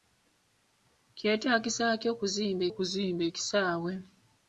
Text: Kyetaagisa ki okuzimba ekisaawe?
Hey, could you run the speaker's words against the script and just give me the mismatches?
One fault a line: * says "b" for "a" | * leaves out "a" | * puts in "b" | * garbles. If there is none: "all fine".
* puts in "okuzimba"